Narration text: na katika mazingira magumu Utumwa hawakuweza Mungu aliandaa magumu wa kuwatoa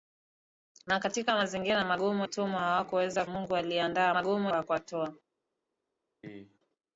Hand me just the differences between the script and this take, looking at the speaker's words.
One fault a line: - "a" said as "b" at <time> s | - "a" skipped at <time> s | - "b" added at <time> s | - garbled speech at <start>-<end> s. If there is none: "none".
none